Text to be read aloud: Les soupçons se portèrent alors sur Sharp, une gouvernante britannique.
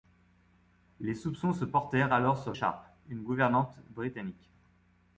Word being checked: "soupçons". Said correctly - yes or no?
yes